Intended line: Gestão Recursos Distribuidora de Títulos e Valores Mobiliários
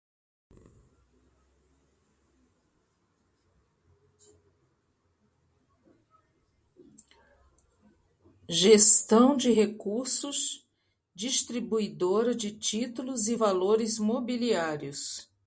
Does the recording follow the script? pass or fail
fail